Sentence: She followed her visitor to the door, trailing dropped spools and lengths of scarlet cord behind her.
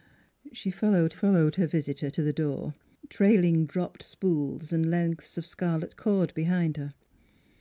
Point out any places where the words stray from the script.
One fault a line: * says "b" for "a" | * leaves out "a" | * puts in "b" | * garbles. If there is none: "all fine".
* puts in "followed"